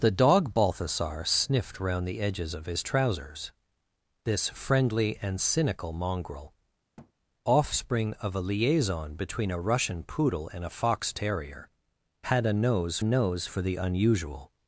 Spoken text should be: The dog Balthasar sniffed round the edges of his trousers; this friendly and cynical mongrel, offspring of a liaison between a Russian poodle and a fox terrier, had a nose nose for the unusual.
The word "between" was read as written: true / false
true